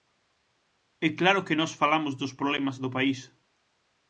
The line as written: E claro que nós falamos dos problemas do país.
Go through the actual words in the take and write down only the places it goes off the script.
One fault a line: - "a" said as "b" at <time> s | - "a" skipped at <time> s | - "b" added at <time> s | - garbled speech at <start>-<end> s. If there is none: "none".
none